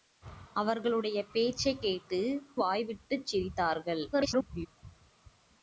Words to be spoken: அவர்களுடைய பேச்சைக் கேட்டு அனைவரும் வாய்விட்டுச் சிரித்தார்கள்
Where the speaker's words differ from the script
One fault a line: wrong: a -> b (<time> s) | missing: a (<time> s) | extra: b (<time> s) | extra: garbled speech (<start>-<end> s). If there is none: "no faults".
missing: அனைவரும் (2.2 s)
extra: garbled speech (4.1-4.7 s)